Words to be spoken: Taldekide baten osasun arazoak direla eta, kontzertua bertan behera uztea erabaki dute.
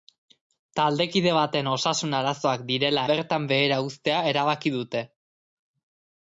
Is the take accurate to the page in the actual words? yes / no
no